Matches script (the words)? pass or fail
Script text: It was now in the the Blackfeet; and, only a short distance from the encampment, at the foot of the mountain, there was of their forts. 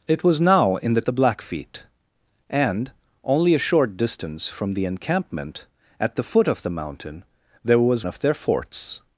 pass